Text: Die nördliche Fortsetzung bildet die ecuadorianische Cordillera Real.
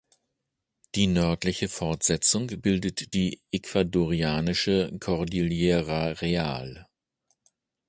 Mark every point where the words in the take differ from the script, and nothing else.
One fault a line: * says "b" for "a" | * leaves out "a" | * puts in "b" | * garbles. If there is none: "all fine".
all fine